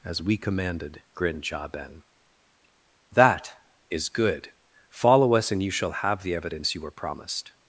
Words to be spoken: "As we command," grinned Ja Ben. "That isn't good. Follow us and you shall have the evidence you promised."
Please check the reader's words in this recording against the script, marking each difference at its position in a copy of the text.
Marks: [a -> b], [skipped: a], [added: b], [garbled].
"As we [command," -> commanded] grinned Ja Ben. "That [isn't -> is] good. Follow us and you shall have the evidence you [added: were] promised."